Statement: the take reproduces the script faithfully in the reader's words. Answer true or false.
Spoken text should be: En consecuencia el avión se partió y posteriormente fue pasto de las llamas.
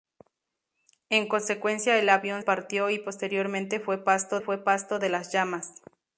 false